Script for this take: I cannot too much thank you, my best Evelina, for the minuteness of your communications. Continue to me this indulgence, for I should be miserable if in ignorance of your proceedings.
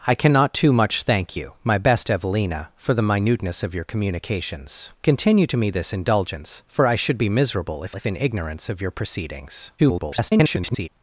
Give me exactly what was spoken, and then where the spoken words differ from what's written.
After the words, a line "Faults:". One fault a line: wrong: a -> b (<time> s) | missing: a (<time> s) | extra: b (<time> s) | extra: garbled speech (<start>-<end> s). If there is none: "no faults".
I cannot too much thank you, my best Evelina, for the minuteness of your communications. Continue to me this indulgence, for I should be miserable if if in ignorance of your proceedings. [garbled]
Faults:
extra: if (7.9 s)
extra: garbled speech (9.8-10.9 s)